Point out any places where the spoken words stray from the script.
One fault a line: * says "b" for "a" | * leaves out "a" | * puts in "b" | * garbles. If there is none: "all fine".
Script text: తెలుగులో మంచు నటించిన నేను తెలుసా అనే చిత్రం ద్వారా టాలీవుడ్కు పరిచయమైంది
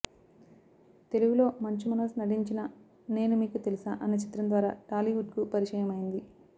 * puts in "మనోజ్"
* puts in "మీకు"